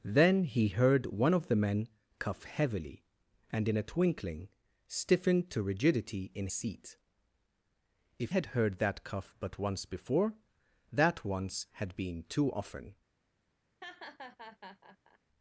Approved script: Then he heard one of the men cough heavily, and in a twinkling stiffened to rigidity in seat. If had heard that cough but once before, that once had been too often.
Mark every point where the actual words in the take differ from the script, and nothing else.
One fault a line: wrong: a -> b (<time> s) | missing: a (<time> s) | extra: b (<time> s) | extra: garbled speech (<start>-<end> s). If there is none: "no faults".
no faults